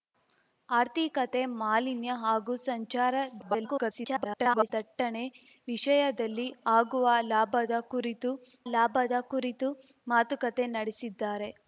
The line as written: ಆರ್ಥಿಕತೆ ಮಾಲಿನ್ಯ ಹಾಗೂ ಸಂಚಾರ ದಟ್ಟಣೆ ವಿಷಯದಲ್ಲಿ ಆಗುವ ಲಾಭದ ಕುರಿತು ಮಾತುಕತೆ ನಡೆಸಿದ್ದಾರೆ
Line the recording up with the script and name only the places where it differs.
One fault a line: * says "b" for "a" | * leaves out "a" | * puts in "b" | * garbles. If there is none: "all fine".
* garbles
* puts in "ಲಾಭದ ಕುರಿತು"